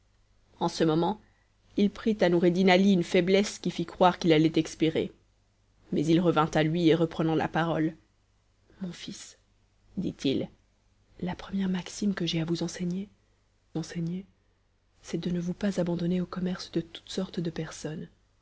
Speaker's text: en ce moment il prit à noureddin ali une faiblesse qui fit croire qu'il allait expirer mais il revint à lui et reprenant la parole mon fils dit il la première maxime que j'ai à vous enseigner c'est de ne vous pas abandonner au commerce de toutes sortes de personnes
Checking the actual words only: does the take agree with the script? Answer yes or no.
no